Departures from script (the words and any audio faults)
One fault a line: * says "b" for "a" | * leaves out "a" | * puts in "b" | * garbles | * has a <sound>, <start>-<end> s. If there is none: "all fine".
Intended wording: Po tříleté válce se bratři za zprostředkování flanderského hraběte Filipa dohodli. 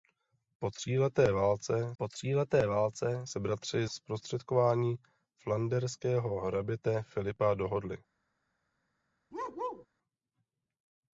* puts in "po tříleté válce"
* leaves out "za"
* has a bark, 9.3-9.9 s